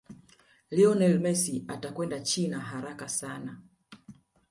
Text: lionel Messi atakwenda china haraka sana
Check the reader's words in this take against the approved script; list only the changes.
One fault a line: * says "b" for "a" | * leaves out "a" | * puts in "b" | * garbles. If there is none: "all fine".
all fine